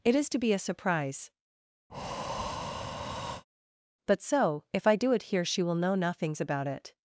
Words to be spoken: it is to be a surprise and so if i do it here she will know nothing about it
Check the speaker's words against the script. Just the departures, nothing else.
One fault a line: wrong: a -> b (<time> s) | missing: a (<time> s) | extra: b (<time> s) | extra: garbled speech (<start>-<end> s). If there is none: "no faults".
wrong: and -> but (4.1 s)
wrong: nothing -> nothings (5.9 s)